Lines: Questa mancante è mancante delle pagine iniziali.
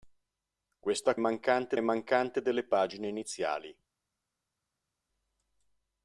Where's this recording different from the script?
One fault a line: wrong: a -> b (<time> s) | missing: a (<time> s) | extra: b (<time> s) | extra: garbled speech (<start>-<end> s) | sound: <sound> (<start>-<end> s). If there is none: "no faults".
no faults